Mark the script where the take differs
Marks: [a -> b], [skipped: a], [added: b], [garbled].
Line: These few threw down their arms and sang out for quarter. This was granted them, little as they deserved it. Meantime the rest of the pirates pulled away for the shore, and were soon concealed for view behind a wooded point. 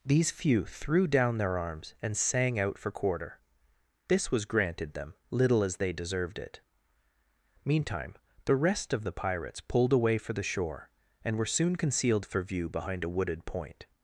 These few threw down their arms and sang out for quarter. This was granted them, little as they deserved it. Meantime the rest of the pirates pulled away for the shore, and were soon concealed for view behind a wooded point.